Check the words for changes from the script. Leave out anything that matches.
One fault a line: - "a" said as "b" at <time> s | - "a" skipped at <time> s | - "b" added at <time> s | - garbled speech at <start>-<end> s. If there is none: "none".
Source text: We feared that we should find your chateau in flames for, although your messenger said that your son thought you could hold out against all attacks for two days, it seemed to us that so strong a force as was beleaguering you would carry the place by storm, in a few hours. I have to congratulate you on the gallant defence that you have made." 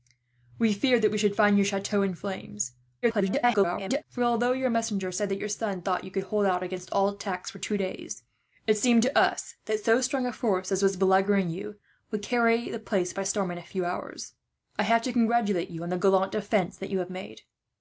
- garbled speech at 3.0-4.0 s